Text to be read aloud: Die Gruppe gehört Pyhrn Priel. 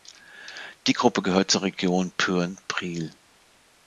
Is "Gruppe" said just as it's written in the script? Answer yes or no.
yes